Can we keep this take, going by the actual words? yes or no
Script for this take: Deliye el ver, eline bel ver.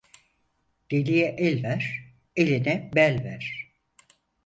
yes